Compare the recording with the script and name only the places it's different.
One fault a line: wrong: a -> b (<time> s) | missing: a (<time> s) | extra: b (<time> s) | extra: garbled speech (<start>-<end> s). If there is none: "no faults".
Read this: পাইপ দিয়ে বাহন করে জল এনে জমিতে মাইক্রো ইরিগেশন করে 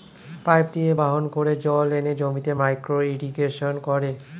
no faults